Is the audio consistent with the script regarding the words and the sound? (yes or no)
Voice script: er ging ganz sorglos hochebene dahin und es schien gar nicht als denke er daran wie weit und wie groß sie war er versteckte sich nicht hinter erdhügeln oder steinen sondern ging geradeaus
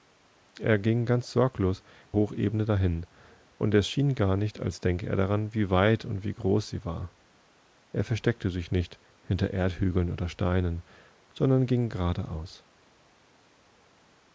yes